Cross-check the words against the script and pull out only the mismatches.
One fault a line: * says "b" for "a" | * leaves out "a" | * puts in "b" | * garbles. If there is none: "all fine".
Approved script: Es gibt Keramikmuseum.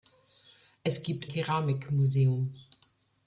all fine